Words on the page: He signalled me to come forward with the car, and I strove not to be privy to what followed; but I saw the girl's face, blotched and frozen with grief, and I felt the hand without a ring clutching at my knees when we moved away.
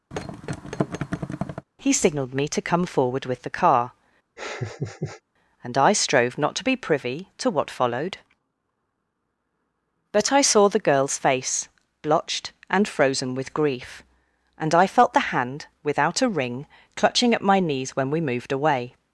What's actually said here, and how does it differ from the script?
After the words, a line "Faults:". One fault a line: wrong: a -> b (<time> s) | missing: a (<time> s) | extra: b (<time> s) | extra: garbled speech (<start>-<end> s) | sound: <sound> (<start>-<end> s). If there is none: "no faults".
He signalled me to come forward with the car, and I strove not to be privy to what followed; but I saw the girl's face, blotched and frozen with grief, and I felt the hand without a ring clutching at my knees when we moved away.
Faults:
sound: thud (0.1-1.7 s)
sound: laugh (4.4-5.2 s)